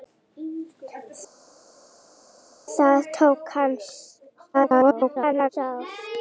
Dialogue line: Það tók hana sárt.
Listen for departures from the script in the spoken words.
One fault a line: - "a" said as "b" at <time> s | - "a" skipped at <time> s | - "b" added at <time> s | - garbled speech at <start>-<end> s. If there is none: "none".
- garbled speech at 4.5-5.5 s